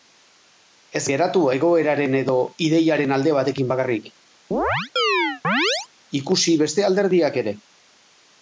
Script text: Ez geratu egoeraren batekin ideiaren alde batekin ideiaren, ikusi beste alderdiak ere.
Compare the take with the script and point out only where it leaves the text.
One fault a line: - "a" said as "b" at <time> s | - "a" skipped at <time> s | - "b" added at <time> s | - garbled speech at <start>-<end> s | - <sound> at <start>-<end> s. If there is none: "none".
- "batekin" said as "edo" at 2.2 s
- "ideiaren" said as "bakarrik" at 3.7 s
- chirp at 4.5-5.9 s